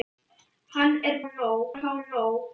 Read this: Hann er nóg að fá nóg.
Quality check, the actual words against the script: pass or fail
pass